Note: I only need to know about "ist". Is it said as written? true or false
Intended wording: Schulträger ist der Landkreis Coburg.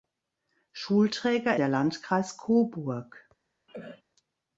false